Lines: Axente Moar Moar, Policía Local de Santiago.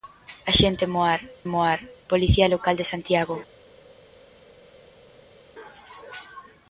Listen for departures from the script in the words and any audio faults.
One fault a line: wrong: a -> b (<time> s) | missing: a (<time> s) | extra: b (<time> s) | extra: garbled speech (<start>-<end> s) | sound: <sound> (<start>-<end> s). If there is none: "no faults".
no faults